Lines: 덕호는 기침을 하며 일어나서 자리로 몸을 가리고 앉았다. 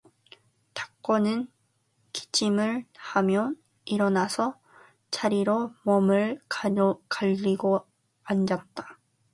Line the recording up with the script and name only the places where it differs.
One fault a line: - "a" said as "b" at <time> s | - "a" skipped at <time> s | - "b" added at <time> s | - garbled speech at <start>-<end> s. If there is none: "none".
none